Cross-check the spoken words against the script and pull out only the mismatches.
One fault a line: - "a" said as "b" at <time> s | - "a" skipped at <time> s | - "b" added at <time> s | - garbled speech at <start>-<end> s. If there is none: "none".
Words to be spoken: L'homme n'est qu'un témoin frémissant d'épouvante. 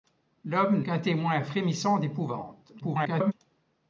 - "n'est" skipped at 0.8 s
- garbled speech at 2.8-3.3 s